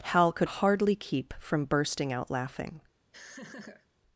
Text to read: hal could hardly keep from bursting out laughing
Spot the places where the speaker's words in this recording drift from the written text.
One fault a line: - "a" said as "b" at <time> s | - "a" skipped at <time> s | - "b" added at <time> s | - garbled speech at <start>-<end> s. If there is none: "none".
none